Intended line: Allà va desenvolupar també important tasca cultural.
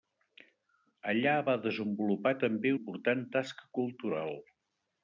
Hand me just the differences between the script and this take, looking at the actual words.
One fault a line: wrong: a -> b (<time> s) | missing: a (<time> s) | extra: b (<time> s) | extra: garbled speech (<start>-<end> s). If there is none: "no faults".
no faults